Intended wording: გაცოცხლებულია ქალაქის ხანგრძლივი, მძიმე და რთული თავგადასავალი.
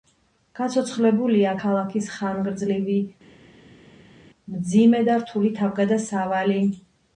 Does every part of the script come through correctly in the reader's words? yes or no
yes